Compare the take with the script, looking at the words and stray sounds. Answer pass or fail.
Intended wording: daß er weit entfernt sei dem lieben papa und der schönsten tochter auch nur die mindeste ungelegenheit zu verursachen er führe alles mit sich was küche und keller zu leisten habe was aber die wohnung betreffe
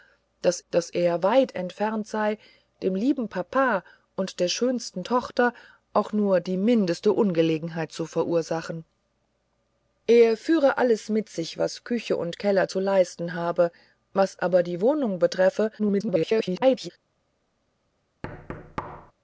fail